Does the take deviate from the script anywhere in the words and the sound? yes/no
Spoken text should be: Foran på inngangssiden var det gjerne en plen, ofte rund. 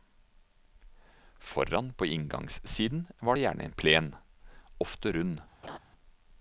yes